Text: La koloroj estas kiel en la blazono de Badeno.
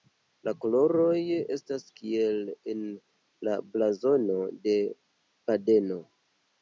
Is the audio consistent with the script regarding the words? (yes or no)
yes